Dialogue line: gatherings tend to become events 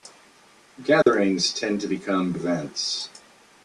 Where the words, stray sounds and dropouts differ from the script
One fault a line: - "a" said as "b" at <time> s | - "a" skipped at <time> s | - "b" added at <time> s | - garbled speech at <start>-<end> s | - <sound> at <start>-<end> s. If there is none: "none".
- dropout at 1.0-1.1 s